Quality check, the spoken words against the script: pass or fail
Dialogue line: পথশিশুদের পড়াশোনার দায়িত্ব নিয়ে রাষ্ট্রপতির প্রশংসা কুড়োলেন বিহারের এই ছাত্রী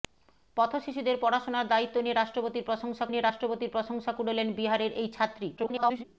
fail